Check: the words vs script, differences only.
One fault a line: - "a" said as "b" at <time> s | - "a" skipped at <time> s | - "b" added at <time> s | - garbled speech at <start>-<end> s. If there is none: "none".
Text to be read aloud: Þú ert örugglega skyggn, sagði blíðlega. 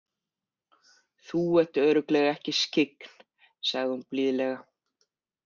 - "ekki" added at 2.4 s
- "hún" added at 3.9 s